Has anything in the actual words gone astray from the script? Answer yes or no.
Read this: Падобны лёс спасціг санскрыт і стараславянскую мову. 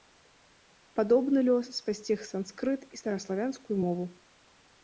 no